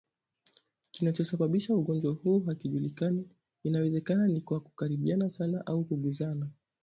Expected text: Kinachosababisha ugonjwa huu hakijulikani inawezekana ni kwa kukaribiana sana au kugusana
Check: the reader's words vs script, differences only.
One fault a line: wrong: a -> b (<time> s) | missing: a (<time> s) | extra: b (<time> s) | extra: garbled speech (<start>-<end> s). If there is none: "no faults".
no faults